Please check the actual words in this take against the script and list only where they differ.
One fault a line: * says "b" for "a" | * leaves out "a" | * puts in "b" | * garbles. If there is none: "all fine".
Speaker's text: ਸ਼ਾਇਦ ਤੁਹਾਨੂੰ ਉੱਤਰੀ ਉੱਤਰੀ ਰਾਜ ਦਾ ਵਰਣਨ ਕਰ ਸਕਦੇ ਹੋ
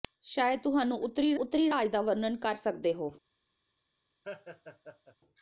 all fine